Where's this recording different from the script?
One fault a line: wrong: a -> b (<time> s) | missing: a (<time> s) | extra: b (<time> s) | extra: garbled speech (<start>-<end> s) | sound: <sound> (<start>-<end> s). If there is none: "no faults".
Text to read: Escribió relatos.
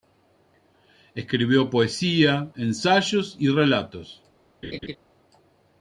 extra: poesía ensayos y (1.7 s)
sound: laugh (4.6-5.0 s)